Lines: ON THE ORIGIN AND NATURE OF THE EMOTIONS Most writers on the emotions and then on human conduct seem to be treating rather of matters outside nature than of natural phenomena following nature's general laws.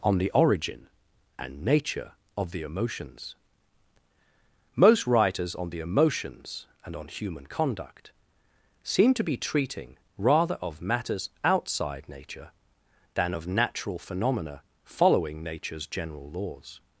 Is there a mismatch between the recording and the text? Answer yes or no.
yes